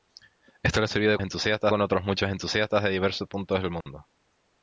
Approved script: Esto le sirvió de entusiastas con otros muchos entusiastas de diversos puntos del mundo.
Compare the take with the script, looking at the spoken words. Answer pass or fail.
pass